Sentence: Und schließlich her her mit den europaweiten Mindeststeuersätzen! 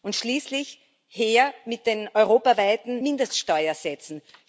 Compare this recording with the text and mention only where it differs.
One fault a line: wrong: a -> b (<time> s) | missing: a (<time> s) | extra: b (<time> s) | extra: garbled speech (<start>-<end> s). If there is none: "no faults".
missing: her (1.5 s)